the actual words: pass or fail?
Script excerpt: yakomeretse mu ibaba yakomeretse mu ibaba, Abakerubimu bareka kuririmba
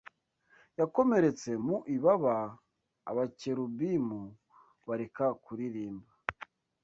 fail